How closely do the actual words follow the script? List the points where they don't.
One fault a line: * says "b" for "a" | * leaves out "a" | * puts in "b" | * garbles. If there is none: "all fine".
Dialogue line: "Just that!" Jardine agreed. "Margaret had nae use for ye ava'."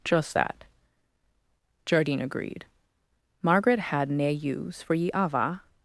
all fine